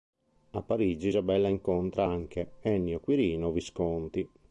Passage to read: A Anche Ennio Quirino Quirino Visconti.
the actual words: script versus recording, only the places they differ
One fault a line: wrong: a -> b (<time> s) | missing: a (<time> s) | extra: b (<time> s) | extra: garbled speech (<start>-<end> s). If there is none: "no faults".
extra: Parigi Isabella incontra (0.6 s)
missing: Quirino (3.5 s)